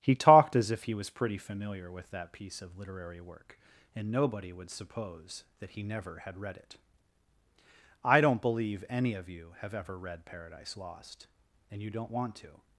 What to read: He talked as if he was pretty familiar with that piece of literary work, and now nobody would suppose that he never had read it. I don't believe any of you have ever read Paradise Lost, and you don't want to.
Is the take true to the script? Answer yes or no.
no